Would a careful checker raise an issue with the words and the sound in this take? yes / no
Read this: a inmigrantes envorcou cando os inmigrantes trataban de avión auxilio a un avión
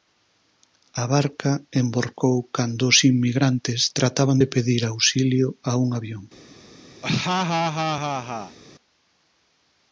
yes